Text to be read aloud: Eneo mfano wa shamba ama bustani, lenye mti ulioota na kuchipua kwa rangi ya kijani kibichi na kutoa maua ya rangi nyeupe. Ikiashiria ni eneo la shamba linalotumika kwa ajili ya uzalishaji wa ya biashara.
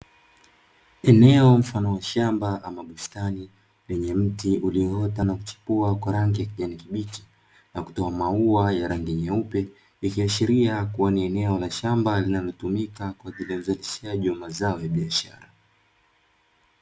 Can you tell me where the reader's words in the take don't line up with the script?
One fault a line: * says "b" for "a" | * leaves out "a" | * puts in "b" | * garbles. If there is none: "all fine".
* puts in "kuwa"
* puts in "mazao"